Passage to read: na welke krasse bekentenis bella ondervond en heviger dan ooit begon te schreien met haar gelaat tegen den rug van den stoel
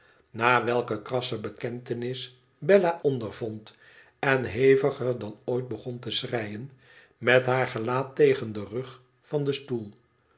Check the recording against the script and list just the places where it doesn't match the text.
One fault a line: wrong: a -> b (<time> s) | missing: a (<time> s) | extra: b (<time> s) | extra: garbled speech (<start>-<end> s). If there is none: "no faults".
no faults